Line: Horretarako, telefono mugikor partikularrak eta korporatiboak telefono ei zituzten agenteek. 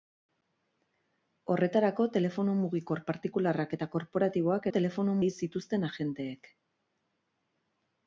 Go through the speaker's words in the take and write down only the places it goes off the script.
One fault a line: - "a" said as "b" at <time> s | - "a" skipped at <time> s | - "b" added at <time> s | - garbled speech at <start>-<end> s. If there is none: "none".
none